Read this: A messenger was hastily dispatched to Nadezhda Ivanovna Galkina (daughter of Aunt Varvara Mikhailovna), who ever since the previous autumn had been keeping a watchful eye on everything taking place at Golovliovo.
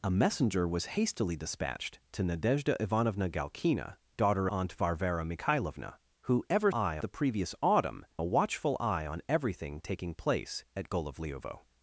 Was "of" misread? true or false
true